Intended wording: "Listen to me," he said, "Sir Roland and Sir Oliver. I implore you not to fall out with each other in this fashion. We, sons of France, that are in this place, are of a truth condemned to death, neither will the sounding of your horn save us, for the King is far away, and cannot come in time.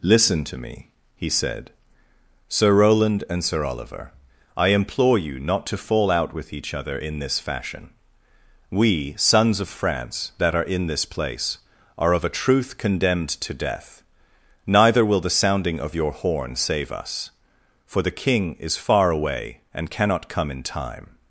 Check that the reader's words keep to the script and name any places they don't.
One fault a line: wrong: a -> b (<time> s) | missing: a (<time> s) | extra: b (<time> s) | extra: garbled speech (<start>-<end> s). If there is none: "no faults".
no faults